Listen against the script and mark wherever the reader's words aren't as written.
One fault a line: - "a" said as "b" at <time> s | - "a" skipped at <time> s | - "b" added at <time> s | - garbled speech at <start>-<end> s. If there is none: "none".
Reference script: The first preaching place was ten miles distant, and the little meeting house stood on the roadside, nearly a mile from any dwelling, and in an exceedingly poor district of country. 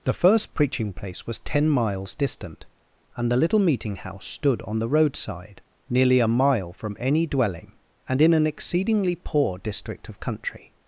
none